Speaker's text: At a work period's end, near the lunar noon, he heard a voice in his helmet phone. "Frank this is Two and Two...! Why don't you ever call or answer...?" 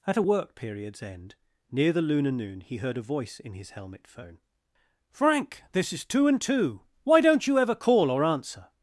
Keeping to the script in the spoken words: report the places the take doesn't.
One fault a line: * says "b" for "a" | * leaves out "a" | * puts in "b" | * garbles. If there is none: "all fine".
all fine